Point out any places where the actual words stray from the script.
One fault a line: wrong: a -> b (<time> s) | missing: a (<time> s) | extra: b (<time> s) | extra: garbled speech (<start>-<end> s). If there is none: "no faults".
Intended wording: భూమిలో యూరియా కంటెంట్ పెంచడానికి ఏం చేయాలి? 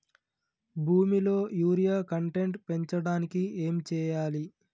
no faults